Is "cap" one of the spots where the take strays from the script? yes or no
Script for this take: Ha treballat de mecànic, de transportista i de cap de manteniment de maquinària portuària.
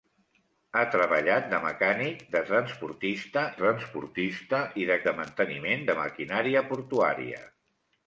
yes